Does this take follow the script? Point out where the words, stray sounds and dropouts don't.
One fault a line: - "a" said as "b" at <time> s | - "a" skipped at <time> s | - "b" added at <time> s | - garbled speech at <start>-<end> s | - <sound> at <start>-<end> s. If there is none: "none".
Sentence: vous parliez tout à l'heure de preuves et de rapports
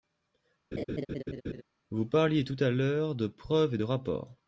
- laugh at 0.7-1.6 s